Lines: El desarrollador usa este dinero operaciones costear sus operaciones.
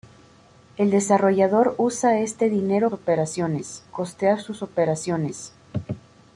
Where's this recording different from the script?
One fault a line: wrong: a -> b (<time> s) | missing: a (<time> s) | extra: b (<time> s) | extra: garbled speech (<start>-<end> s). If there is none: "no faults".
no faults